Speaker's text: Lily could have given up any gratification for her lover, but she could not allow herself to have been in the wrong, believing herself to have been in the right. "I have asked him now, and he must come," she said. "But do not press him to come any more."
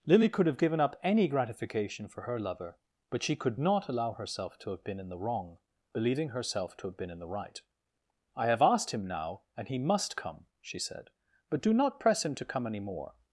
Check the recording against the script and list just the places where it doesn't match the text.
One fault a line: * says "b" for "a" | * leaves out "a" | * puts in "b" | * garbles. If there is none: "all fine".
all fine